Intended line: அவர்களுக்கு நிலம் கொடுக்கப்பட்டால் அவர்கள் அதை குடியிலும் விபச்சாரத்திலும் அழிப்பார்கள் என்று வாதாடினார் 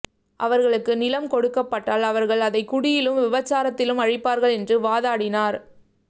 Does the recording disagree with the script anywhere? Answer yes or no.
no